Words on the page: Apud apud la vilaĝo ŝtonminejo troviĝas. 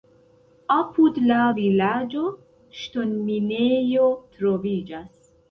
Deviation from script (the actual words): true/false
true